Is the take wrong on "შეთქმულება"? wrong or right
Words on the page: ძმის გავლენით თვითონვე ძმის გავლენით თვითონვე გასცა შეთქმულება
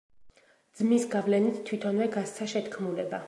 right